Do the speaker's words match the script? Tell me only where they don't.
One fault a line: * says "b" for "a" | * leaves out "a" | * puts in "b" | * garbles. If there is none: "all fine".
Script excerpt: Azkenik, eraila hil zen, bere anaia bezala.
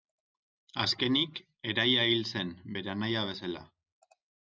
all fine